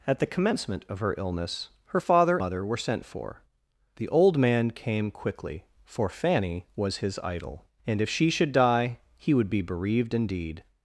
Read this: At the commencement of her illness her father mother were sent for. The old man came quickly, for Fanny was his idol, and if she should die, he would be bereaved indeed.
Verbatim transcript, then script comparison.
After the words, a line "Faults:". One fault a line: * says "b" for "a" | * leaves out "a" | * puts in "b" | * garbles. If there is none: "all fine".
At the commencement of her illness her father mother were sent for. The old man came quickly, for Fanny was his idol, and if she should die, he would be bereaved indeed.
Faults:
all fine